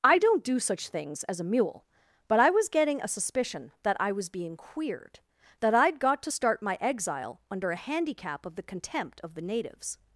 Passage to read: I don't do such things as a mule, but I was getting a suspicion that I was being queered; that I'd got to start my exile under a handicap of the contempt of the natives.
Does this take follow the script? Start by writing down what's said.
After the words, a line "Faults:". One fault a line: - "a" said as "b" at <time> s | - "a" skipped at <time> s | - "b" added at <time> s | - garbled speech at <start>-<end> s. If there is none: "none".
I don't do such things as a mule, but I was getting a suspicion that I was being queered; that I'd got to start my exile under a handicap of the contempt of the natives.
Faults:
none